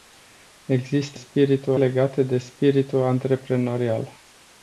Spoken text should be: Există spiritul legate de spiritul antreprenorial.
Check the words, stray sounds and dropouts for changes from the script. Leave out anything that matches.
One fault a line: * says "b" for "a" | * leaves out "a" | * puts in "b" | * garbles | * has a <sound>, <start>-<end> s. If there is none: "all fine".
all fine